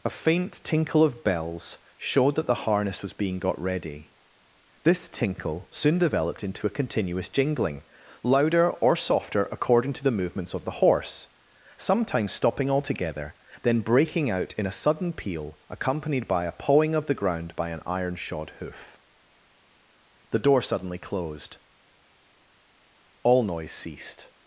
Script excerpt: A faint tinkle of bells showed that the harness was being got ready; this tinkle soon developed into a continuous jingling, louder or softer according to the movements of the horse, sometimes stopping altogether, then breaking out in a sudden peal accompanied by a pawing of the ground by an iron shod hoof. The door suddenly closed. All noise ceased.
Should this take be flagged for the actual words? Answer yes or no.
no